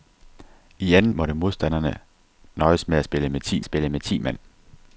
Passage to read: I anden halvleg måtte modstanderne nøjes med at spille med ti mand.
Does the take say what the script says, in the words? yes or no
no